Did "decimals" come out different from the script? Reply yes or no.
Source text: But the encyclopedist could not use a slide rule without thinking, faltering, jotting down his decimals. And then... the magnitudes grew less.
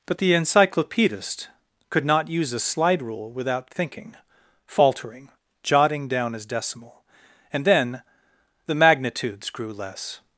yes